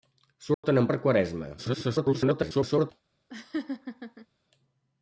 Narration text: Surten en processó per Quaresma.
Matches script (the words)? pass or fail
fail